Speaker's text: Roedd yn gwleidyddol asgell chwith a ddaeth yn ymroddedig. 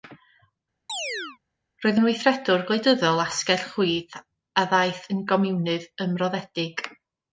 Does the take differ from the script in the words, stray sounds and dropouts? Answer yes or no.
yes